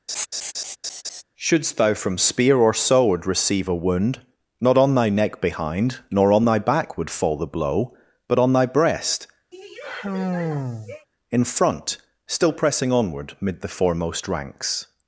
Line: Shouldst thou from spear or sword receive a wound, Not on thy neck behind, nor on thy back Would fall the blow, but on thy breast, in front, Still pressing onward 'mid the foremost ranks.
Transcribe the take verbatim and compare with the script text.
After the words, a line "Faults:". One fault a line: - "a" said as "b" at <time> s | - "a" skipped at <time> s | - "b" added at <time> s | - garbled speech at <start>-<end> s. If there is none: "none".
Shouldst thou from spear or sword receive a wound, Not on thy neck behind, nor on thy back Would fall the blow, but on thy breast, in front, Still pressing onward 'mid the foremost ranks.
Faults:
none